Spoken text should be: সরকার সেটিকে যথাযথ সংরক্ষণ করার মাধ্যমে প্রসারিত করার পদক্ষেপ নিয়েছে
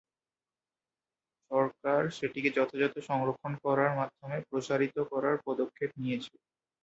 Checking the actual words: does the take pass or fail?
pass